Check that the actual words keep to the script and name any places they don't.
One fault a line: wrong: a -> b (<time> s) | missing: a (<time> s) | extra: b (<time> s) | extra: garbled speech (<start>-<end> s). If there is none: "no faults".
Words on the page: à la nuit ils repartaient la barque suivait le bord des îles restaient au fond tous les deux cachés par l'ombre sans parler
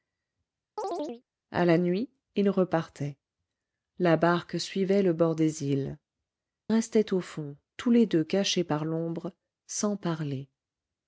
no faults